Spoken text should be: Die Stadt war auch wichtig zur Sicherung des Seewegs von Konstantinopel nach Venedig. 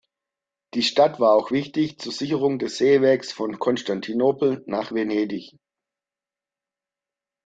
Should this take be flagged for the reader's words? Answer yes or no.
no